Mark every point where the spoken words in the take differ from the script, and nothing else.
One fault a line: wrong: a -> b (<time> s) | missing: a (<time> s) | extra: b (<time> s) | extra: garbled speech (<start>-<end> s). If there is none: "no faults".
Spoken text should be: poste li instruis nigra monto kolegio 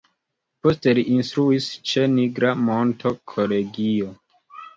extra: ĉe (1.9 s)